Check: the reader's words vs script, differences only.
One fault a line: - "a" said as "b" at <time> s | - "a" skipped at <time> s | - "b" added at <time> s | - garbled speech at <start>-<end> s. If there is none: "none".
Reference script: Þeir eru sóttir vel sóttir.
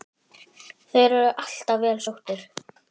- "sóttir" said as "alltaf" at 1.4 s